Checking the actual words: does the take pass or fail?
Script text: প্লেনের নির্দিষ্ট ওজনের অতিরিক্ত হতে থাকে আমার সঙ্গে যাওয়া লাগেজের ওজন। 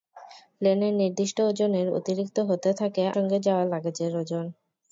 fail